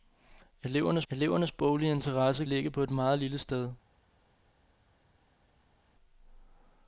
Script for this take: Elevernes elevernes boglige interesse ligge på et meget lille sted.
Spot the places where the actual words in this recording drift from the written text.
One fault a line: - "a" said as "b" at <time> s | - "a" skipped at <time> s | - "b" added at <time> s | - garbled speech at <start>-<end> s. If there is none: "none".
none